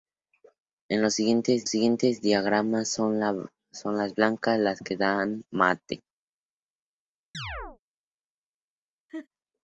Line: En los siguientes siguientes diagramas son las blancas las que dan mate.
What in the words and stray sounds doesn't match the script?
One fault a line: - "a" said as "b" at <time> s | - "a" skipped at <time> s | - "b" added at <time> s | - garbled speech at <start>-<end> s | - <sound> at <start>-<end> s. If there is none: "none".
- chirp at 7.3-7.8 s
- laugh at 9.1-9.3 s